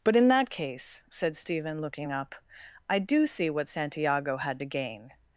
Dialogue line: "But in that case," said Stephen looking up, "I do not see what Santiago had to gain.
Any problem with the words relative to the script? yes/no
yes